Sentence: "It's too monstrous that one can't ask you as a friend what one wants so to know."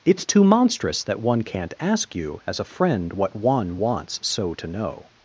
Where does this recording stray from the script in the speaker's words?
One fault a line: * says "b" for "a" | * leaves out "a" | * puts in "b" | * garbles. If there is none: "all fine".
all fine